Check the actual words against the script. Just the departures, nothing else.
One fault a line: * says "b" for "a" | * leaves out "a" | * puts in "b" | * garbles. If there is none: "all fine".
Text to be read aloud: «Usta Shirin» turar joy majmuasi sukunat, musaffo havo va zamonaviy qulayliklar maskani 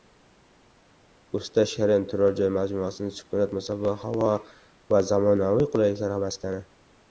all fine